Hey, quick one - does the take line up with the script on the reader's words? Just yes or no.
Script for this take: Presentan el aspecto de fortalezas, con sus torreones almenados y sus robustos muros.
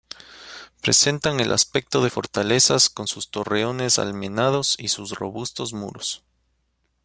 yes